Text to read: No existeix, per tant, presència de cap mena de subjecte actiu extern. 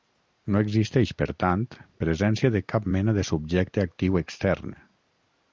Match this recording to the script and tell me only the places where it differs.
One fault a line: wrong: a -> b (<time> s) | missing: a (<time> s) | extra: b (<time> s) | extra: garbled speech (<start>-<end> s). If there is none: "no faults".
no faults